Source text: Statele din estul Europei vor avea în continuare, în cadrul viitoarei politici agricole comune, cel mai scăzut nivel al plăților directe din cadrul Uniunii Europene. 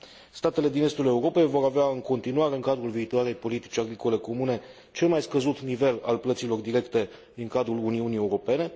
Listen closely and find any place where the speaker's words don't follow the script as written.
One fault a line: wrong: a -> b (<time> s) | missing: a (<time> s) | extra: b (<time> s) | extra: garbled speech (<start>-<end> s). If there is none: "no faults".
no faults